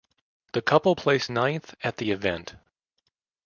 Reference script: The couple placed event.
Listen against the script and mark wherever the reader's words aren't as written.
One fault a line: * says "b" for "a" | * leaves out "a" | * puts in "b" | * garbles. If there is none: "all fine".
* puts in "ninth at the"